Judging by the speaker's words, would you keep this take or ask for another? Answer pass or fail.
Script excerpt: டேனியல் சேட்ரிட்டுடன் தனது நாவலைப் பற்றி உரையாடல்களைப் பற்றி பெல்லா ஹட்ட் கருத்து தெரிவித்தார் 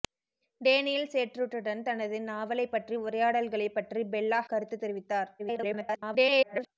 fail